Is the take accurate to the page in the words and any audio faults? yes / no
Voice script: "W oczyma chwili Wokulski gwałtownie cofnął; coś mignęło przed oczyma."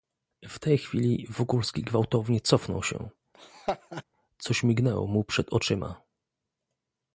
no